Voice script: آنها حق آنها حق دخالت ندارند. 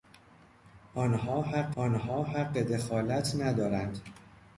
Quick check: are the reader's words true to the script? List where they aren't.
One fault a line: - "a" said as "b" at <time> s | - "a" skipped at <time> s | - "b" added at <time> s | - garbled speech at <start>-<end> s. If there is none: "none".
none